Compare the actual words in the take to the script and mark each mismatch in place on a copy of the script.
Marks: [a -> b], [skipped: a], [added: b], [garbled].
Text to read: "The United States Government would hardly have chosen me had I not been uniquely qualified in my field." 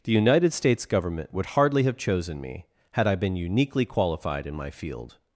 "The United States Government would hardly have chosen me had I [skipped: not] been uniquely qualified in my field."